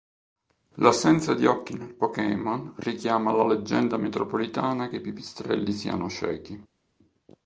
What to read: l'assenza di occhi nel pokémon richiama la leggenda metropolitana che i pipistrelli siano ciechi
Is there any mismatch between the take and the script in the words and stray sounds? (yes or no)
no